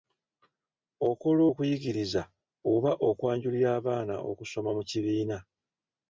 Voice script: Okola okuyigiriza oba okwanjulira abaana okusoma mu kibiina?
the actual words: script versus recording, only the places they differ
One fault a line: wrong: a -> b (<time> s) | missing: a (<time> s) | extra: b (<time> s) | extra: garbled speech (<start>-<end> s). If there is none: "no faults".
no faults